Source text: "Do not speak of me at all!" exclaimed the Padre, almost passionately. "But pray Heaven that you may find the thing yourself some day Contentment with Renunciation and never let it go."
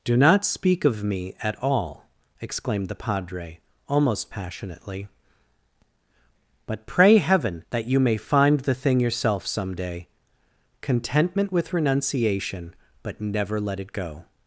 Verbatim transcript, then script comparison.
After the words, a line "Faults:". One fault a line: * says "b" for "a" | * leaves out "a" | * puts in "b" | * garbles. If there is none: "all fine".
"Do not speak of me at all!" exclaimed the Padre, almost passionately. "But pray Heaven that you may find the thing yourself some day Contentment with Renunciation but never let it go."
Faults:
* says "but" for "and"